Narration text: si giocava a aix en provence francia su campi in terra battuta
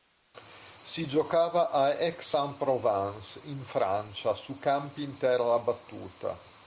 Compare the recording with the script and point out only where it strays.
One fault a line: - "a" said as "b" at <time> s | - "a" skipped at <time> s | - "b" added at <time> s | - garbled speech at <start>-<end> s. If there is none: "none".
- "in" added at 3.4 s